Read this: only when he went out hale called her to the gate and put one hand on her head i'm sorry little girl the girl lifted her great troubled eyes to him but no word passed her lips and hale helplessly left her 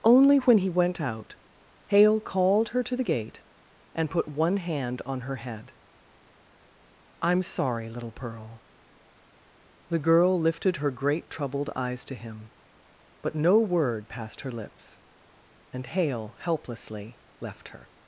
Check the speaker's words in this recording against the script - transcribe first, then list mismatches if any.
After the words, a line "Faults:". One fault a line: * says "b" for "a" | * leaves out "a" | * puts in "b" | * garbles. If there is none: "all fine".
only when he went out hale called her to the gate and put one hand on her head i'm sorry little pearl the girl lifted her great troubled eyes to him but no word passed her lips and hale helplessly left her
Faults:
* says "pearl" for "girl"